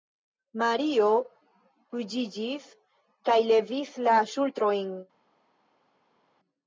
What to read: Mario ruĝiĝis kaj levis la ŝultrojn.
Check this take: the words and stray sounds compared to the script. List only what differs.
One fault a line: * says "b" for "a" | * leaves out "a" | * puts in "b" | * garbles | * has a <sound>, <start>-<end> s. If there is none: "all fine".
all fine